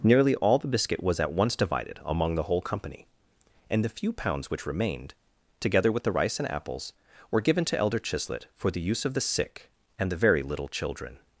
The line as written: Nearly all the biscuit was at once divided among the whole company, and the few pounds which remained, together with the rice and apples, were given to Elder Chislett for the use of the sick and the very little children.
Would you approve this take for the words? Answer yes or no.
yes